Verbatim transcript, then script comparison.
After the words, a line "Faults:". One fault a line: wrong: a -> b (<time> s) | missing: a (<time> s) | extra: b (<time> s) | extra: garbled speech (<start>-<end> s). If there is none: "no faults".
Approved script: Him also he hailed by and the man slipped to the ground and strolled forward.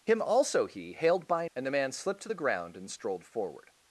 Him also he hailed by and the man slipped to the ground and strolled forward.
Faults:
no faults